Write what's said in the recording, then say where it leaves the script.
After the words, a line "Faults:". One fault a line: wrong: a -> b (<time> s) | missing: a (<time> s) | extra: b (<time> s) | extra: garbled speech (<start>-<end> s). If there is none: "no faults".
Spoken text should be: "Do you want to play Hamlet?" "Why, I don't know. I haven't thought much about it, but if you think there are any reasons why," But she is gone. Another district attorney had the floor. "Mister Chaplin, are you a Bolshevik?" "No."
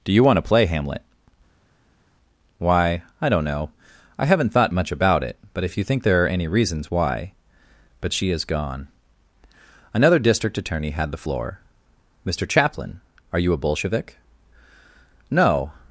"Do you want to play Hamlet?" "Why, I don't know. I haven't thought much about it, but if you think there are any reasons why," But she is gone. Another district attorney had the floor. "Mister Chaplin, are you a Bolshevik?" "No."
Faults:
no faults